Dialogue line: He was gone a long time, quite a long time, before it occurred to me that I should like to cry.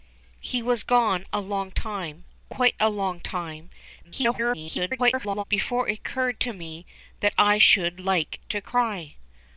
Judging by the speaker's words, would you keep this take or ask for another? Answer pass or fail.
fail